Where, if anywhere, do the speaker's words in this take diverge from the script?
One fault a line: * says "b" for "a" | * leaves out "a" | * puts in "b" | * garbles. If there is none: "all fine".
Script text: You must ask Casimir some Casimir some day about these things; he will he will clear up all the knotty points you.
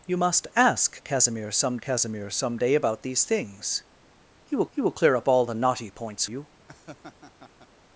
all fine